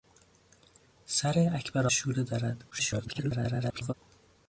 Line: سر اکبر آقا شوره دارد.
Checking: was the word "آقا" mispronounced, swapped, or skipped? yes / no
yes